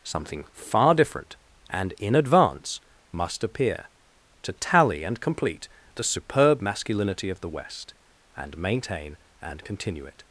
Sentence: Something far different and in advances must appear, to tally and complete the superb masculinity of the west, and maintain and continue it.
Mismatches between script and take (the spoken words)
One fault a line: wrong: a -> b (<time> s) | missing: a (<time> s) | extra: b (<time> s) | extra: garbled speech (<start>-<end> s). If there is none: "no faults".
wrong: advances -> advance (2.1 s)